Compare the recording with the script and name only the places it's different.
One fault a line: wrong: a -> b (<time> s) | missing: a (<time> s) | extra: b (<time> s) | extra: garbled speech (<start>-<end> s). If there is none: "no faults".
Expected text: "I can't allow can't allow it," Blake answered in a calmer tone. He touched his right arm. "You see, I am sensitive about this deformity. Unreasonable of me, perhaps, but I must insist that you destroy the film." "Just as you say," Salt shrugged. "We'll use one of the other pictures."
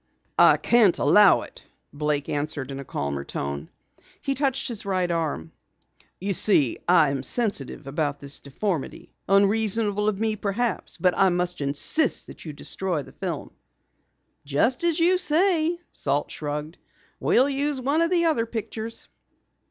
missing: can't allow (1.4 s)